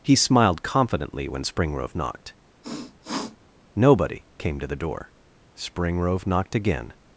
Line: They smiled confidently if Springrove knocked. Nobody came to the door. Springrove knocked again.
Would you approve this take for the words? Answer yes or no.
no